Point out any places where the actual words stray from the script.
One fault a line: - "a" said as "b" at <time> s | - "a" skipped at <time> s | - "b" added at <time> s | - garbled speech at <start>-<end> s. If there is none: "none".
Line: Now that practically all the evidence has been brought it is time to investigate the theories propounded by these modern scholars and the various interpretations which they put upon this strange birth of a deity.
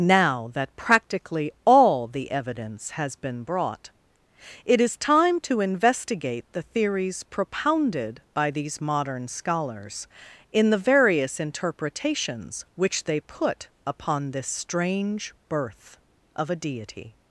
- "and" said as "in" at 10.5 s